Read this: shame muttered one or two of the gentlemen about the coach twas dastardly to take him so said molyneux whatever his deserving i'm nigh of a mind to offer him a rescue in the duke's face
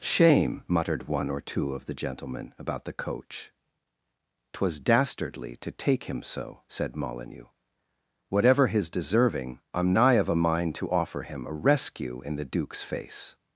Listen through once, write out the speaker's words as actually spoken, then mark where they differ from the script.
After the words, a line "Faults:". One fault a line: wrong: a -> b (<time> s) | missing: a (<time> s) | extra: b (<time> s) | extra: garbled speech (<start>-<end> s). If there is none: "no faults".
shame muttered one or two of the gentlemen about the coach twas dastardly to take him so said molyneux whatever his deserving i'm nigh of a mind to offer him a rescue in the duke's face
Faults:
no faults